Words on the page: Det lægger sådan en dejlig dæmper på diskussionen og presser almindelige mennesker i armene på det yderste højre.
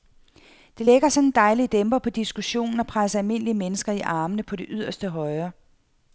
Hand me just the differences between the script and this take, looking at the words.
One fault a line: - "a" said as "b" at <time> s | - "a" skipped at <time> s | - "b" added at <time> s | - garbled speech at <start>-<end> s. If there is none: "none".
none